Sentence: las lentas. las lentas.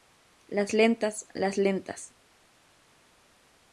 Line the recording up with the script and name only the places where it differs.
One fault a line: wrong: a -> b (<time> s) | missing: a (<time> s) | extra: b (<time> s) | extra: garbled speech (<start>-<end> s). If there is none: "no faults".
no faults